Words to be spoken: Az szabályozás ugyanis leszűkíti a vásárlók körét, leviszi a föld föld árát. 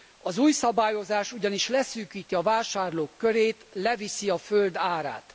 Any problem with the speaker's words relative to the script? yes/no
yes